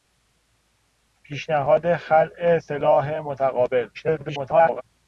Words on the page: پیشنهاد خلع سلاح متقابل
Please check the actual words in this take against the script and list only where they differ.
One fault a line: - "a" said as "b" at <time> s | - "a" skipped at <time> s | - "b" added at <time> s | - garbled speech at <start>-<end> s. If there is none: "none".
- garbled speech at 3.9-4.8 s